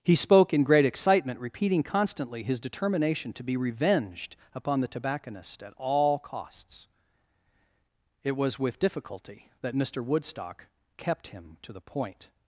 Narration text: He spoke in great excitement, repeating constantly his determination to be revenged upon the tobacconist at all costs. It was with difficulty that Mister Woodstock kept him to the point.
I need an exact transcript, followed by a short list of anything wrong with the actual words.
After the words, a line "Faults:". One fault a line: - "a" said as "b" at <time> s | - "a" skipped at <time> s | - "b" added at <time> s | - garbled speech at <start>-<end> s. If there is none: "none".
He spoke in great excitement, repeating constantly his determination to be revenged upon the tobacconist at all costs. It was with difficulty that Mister Woodstock kept him to the point.
Faults:
none